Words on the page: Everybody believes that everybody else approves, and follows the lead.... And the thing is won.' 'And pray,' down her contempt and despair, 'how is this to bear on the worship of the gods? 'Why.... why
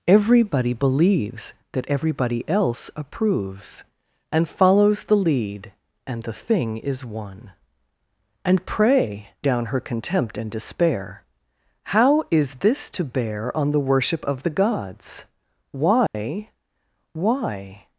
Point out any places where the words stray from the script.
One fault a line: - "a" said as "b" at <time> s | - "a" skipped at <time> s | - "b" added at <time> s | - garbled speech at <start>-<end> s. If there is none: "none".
none